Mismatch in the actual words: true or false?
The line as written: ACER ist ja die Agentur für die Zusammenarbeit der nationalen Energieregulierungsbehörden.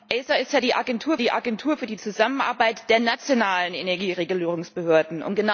true